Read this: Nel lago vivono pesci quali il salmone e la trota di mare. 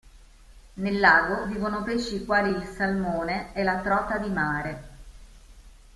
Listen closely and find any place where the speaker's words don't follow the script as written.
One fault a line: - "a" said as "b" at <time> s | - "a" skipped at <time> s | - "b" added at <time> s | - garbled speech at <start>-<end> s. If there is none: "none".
none